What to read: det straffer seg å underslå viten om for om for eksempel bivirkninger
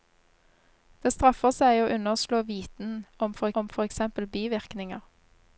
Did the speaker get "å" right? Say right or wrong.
right